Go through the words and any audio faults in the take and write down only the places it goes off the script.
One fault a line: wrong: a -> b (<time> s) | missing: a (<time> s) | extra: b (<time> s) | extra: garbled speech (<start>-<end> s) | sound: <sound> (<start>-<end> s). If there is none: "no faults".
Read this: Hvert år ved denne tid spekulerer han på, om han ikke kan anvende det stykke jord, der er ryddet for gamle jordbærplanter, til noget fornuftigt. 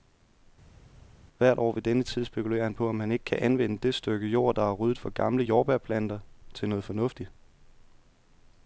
no faults